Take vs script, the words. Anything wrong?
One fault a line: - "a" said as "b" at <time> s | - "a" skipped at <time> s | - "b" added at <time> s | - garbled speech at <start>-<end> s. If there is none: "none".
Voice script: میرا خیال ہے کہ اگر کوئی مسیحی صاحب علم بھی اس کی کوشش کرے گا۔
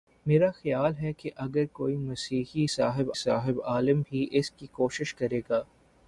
- "صاحب" added at 3.1 s